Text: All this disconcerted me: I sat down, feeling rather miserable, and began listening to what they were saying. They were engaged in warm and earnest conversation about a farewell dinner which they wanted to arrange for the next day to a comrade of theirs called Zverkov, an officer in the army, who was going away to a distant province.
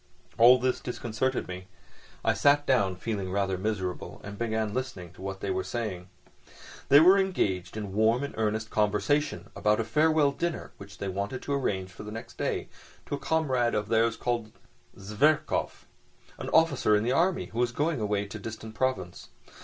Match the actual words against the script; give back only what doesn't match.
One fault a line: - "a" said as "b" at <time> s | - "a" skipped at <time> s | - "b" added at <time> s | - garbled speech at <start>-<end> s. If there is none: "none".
none